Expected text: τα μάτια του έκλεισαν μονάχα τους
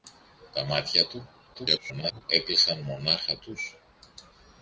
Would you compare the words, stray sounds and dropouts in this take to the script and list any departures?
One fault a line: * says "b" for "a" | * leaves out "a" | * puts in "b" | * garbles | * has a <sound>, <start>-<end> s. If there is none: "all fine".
* garbles